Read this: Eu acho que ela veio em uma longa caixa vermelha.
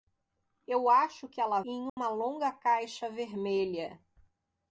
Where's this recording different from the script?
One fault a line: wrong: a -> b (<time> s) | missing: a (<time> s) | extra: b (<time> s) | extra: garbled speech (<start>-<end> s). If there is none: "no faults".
missing: veio (1.6 s)